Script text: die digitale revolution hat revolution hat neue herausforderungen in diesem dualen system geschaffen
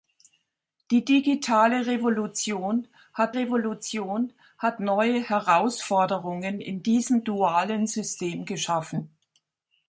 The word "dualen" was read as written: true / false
true